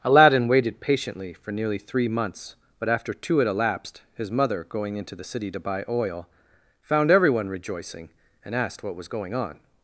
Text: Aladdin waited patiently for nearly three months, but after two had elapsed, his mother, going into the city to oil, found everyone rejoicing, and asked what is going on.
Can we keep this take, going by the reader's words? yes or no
no